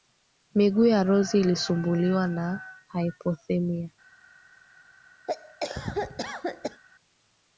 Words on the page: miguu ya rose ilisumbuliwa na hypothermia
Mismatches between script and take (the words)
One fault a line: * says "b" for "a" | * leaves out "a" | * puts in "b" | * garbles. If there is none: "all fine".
all fine